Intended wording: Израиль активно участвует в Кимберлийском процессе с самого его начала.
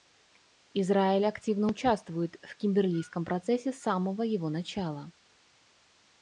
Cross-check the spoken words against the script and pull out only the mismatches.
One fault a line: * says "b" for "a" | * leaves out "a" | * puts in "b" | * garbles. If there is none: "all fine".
all fine